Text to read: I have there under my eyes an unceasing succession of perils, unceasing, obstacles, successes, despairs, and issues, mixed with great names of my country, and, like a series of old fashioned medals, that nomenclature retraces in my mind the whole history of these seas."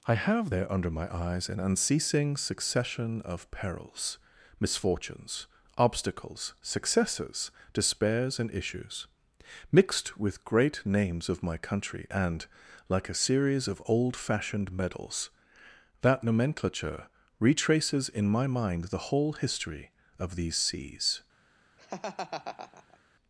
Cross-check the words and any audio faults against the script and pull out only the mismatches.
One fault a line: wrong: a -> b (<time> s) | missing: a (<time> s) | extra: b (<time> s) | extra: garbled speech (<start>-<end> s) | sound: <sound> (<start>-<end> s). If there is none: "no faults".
wrong: unceasing -> misfortunes (4.6 s)
sound: laugh (21.8-23.0 s)